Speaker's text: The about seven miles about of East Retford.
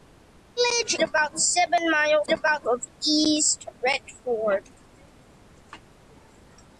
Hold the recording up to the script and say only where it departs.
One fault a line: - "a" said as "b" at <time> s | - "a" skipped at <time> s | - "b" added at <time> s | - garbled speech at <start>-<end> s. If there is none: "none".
none